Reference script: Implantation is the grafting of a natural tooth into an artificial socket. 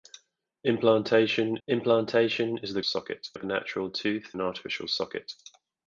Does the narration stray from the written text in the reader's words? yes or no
yes